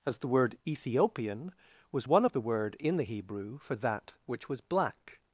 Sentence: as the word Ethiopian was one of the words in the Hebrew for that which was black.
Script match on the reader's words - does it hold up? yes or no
no